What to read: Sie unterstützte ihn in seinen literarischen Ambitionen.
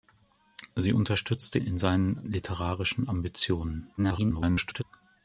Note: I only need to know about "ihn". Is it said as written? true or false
false